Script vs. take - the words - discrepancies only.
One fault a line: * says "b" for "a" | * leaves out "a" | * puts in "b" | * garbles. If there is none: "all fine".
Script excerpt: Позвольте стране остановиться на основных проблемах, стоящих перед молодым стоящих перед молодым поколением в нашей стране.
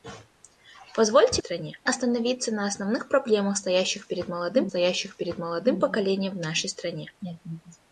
all fine